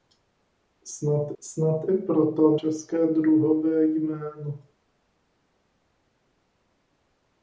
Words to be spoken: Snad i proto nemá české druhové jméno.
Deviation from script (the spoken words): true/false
true